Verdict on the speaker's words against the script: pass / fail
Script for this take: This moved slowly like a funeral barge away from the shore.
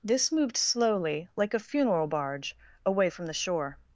pass